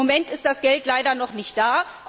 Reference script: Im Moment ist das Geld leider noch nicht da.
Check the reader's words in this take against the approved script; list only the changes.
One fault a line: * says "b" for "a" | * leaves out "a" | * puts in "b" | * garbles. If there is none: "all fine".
all fine